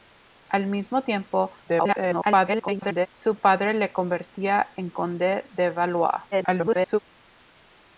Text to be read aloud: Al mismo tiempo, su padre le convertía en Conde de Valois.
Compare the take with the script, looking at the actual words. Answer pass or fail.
fail